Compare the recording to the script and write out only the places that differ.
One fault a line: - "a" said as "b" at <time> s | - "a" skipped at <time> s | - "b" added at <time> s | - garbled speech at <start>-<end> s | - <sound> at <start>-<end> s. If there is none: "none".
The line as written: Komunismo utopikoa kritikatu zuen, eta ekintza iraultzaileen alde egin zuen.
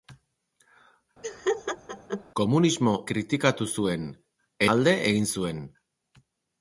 - laugh at 1.2-2.2 s
- "utopikoa" skipped at 2.9 s
- "eta ekintza iraultzaileen" skipped at 4.1 s